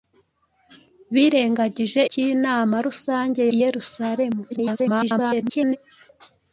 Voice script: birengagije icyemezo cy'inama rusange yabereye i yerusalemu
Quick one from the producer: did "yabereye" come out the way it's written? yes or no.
no